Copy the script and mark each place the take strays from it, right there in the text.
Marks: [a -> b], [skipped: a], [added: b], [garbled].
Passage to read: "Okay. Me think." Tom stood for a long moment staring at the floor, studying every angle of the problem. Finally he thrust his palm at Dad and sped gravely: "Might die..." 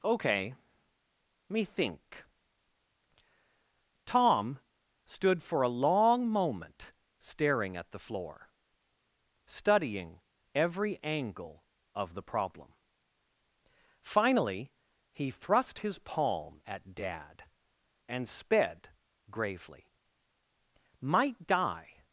"Okay. Me think." Tom stood for a long moment staring at the floor, studying every angle of the problem. Finally he thrust his palm at Dad and sped gravely: "Might die..."